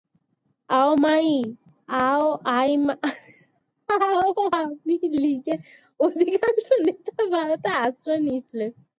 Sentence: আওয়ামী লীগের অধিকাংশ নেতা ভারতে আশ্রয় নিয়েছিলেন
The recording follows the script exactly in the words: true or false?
true